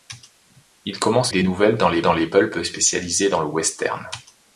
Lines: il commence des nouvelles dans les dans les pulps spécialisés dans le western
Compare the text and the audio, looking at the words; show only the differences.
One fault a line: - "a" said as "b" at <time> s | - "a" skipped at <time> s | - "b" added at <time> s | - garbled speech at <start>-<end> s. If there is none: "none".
none